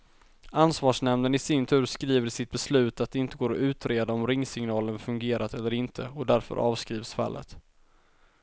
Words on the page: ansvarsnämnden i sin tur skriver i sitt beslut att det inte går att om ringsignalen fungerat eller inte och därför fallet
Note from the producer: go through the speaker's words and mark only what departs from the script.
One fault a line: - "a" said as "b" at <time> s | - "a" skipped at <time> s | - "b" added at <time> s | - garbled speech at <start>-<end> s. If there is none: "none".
- "utreda" added at 3.6 s
- "avskrivs" added at 6.6 s